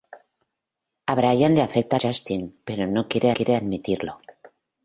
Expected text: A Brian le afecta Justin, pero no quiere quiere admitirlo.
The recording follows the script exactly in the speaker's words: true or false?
true